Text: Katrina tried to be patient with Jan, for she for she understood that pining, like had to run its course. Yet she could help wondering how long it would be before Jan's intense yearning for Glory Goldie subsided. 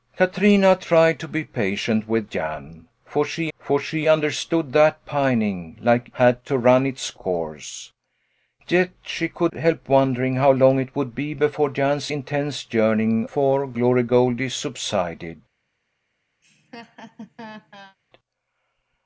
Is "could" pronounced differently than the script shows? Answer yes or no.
no